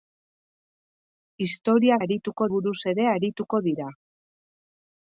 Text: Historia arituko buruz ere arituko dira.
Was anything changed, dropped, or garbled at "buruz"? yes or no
no